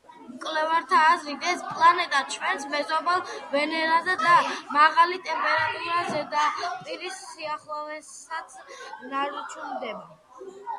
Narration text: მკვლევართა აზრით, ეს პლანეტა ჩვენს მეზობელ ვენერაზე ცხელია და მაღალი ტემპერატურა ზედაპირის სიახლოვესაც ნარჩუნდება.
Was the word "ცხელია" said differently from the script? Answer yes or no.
yes